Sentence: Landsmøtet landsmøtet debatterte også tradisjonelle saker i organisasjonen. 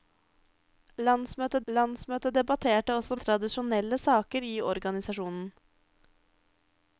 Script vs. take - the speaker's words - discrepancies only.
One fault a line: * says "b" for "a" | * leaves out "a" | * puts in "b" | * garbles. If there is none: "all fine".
all fine